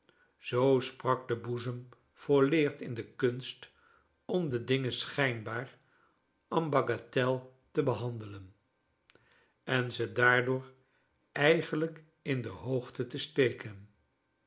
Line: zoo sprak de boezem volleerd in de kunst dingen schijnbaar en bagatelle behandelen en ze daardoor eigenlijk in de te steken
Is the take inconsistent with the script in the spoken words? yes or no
yes